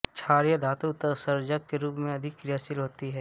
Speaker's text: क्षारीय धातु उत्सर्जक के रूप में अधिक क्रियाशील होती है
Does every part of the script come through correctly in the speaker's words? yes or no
yes